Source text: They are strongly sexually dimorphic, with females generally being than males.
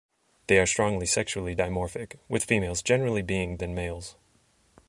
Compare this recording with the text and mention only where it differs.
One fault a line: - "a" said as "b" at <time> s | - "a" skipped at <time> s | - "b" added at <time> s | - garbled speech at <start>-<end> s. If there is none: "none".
none